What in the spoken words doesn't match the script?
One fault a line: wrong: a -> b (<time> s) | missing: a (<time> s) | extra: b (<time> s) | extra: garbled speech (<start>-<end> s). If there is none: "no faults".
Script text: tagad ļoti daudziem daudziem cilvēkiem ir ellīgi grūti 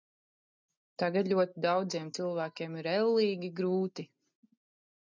missing: daudziem (2.1 s)